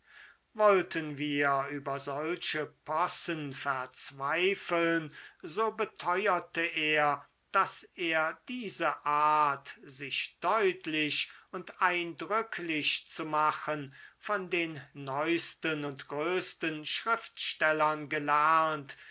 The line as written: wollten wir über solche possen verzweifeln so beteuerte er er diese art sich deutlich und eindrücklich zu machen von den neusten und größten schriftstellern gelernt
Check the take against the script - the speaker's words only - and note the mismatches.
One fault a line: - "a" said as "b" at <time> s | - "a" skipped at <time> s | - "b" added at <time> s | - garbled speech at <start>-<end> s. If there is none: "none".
- "daß" added at 7.5 s